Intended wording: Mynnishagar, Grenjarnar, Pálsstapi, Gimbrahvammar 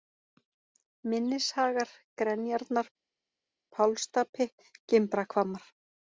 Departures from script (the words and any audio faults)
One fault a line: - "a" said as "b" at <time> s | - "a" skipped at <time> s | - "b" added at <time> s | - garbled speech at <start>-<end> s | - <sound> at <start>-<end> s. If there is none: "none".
none